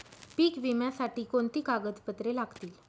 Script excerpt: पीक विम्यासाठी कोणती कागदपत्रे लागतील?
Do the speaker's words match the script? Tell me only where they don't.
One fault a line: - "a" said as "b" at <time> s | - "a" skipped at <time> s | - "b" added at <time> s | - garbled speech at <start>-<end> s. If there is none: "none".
none